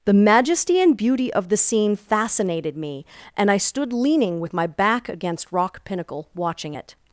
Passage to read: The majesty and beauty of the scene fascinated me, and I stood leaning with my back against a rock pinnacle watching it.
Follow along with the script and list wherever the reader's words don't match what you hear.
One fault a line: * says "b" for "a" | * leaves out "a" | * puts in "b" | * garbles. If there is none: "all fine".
* leaves out "a"